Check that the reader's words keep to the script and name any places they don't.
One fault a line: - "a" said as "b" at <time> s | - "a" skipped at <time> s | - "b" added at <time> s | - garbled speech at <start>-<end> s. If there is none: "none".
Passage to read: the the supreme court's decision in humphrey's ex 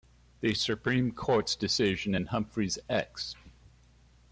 - "the" skipped at 0.6 s